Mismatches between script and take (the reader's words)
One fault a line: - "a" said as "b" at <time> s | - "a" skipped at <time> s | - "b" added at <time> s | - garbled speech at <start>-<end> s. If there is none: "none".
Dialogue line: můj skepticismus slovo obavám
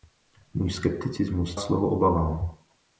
none